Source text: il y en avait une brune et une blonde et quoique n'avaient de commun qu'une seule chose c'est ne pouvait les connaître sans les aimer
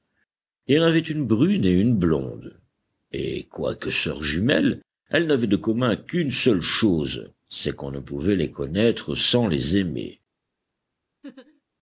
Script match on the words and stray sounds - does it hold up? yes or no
no